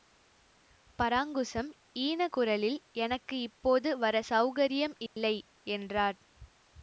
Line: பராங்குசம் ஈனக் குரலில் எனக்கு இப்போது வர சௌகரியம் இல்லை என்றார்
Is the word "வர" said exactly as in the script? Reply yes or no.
yes